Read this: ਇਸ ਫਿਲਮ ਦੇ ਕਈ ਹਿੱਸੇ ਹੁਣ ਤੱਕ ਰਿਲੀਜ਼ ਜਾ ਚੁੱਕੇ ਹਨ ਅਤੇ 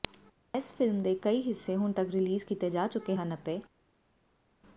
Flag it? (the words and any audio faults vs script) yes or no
yes